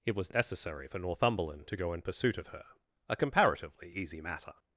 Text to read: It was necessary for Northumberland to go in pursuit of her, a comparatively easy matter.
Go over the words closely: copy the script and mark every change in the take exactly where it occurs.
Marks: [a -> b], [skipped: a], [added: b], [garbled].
It was necessary for Northumberland to go in pursuit of her, a comparatively easy matter.